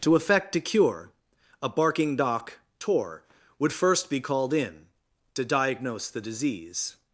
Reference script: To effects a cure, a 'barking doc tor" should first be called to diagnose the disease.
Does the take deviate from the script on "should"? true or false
true